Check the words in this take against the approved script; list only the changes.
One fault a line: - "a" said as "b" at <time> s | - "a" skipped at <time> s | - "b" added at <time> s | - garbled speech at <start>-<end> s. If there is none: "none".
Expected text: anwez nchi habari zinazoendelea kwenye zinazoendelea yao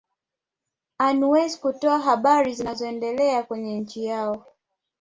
- "nchi" said as "kutoa" at 1.6 s
- "zinazoendelea" said as "nchi" at 3.8 s